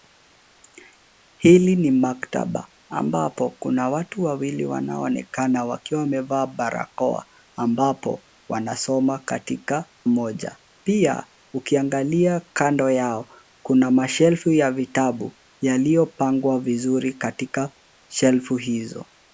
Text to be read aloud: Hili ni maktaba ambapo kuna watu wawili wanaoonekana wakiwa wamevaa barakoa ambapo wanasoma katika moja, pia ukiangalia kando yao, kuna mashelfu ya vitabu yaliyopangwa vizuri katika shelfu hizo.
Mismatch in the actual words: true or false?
false